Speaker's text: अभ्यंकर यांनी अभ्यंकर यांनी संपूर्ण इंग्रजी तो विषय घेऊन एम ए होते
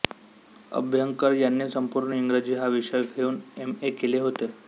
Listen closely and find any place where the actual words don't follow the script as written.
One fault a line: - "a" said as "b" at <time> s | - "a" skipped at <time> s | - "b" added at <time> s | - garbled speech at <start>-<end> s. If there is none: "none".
- "अभ्यंकर यांनी" skipped at 1.7 s
- "तो" said as "हा" at 2.5 s
- "केले" added at 3.9 s